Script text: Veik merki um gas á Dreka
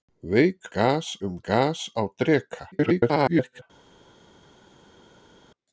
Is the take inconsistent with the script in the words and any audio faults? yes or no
yes